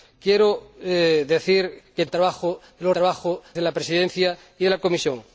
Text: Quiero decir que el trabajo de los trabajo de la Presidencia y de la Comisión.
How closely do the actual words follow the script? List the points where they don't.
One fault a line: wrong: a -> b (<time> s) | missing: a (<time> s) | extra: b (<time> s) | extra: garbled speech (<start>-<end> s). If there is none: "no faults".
no faults